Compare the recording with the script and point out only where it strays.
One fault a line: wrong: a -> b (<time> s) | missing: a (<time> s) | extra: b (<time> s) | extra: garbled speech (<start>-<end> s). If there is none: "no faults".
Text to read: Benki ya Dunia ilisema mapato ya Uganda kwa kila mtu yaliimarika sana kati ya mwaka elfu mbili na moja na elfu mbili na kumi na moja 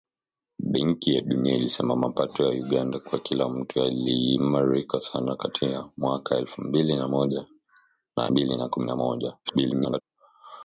missing: elfu (8.3 s)
extra: garbled speech (9.4-10.0 s)